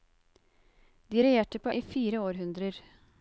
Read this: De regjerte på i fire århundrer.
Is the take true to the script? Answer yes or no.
yes